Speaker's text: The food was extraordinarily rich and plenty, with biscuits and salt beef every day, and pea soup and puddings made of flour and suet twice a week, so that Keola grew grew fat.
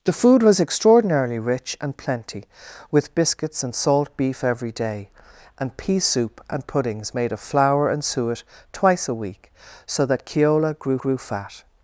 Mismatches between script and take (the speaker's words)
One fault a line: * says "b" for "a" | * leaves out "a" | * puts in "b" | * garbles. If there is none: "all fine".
all fine